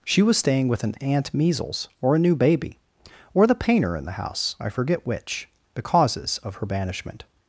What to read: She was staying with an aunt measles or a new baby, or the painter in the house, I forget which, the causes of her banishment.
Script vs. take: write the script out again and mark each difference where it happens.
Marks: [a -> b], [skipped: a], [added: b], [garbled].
She was staying with an aunt measles or a new baby, or the painter in the house, I forget which, the causes of her banishment.